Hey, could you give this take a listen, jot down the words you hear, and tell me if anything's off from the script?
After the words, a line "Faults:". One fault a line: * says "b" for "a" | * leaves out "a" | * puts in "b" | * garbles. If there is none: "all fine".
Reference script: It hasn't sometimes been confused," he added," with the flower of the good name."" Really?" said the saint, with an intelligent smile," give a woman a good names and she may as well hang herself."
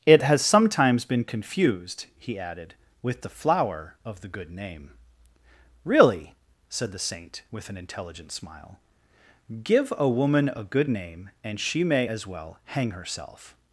It has sometimes been confused," he added," with the flower of the good name."" Really?" said the saint, with an intelligent smile," give a woman a good name and she may as well hang herself."
Faults:
* says "has" for "hasn't"
* says "name" for "names"